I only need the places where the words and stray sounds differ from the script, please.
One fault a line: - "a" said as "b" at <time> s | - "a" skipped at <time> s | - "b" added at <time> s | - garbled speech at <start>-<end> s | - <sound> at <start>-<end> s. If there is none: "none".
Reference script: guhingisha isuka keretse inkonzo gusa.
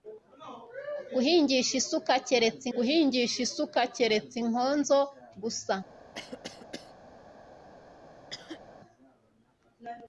- "guhingisha isuka keretse" added at 2.7 s
- cough at 6.1-6.9 s
- cough at 8.3-8.6 s